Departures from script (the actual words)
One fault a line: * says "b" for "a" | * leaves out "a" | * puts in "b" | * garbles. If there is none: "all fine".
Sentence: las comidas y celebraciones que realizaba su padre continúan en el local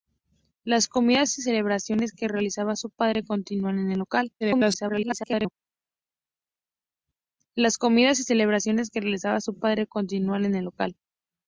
* garbles